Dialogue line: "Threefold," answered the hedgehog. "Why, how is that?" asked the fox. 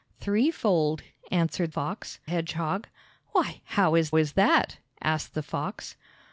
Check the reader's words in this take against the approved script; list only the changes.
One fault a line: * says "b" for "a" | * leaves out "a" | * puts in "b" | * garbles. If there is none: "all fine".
* says "fox" for "the"
* puts in "is"